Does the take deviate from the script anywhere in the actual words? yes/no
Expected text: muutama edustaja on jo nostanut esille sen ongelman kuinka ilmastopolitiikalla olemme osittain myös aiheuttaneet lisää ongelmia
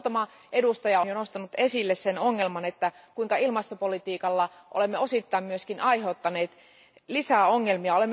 yes